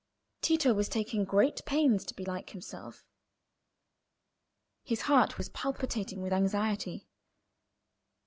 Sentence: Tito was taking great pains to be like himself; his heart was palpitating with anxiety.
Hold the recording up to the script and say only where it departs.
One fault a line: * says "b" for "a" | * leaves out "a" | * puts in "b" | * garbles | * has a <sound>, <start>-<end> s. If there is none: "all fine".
all fine